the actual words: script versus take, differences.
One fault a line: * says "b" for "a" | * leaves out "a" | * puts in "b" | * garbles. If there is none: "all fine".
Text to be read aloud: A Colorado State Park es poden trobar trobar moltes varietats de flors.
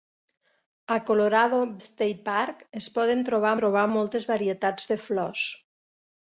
all fine